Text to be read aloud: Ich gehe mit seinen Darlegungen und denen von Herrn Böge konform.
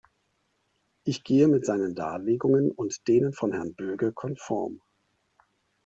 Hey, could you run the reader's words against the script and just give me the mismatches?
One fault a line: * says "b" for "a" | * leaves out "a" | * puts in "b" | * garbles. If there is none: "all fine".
all fine